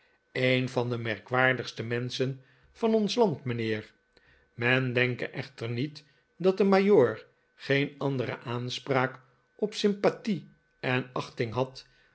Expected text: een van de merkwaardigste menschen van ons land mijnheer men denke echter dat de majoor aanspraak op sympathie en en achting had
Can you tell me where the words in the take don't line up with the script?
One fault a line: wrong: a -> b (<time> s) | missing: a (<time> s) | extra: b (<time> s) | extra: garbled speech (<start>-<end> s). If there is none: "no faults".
extra: niet (5.7 s)
extra: geen andere (7.5 s)
missing: en (11.1 s)